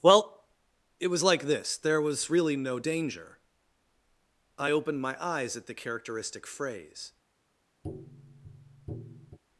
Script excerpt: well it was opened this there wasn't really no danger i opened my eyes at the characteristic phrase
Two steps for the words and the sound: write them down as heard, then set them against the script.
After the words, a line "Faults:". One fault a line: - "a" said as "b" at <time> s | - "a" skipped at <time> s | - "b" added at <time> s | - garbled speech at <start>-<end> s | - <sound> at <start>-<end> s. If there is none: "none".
well it was like this there was really no danger i opened my eyes at the characteristic phrase
Faults:
- "opened" said as "like" at 1.2 s
- "wasn't" said as "was" at 2.0 s
- tap at 7.8-9.4 s